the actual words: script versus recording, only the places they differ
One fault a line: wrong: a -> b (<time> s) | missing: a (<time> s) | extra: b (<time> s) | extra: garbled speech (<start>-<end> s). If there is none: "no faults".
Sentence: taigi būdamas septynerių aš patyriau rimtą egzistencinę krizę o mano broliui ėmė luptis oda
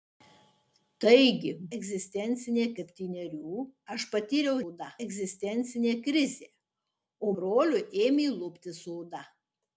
wrong: būdamas -> egzistencinę (1.8 s)
wrong: rimtą -> oda (4.7 s)
missing: mano (7.3 s)